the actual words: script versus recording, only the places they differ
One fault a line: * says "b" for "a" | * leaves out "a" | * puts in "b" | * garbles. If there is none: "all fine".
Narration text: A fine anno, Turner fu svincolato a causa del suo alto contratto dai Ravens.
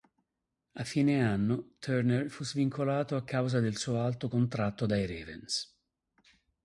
all fine